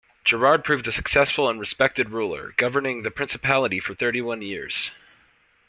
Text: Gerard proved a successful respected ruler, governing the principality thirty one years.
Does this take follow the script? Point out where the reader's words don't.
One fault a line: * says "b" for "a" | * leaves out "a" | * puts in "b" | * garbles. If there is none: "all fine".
* puts in "and"
* puts in "for"